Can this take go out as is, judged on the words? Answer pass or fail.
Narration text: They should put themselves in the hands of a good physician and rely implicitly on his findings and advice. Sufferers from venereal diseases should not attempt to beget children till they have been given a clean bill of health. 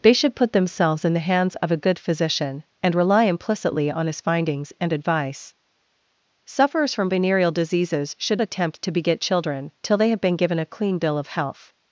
fail